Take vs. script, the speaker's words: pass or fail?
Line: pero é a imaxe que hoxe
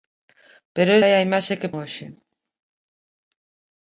pass